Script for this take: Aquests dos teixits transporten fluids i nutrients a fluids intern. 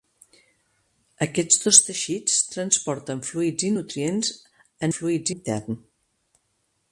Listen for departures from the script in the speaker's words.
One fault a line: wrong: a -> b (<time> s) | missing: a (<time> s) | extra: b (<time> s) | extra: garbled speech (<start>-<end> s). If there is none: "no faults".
no faults